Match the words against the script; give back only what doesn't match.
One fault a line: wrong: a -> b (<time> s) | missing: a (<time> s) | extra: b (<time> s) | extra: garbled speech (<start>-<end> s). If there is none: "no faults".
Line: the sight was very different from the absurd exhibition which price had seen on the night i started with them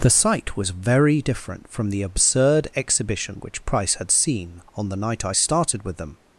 no faults